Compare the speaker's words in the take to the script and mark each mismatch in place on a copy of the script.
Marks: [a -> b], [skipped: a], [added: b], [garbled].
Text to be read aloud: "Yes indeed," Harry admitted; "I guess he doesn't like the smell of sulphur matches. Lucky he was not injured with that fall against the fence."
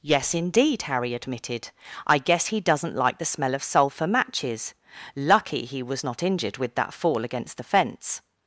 "Yes indeed," Harry admitted; "I guess he doesn't like the smell of sulphur matches. Lucky he was not injured with that fall against the fence."